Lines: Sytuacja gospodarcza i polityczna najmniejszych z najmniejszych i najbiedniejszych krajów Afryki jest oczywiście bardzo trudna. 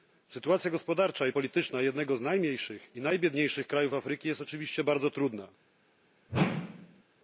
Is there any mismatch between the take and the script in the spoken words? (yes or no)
yes